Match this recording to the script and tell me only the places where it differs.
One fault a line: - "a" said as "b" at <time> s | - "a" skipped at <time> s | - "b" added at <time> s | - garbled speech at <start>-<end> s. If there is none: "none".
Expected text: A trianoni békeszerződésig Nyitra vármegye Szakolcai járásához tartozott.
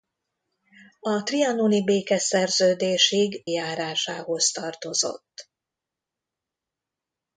- "Nyitra vármegye Szakolcai" skipped at 3.4 s